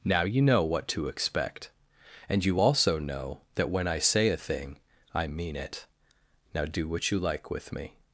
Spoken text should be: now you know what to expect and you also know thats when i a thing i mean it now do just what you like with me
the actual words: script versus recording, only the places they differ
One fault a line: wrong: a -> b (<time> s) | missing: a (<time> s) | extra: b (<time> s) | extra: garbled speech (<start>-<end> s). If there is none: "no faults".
wrong: thats -> that (3.6 s)
extra: say (4.0 s)
missing: just (6.9 s)